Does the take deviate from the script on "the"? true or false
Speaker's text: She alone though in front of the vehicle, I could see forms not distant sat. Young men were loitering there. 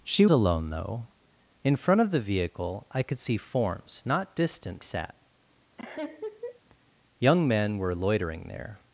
false